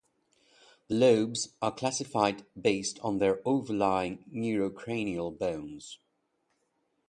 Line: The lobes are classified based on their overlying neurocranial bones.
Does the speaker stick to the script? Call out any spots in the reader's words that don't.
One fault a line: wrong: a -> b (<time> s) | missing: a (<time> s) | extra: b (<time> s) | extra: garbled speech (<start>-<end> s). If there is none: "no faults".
no faults